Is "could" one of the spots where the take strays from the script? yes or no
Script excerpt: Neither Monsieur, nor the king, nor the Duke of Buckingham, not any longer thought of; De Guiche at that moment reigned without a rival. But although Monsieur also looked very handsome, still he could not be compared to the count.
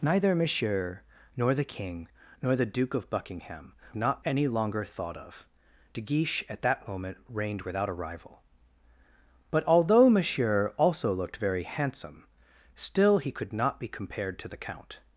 no